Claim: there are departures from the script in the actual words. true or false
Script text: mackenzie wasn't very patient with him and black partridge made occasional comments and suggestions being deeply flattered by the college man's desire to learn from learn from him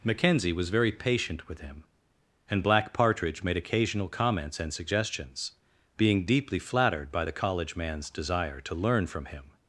true